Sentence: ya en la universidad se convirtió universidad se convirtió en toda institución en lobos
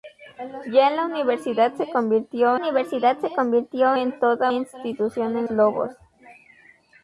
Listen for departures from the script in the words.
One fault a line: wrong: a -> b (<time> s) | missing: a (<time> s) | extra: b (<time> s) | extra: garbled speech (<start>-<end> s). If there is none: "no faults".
no faults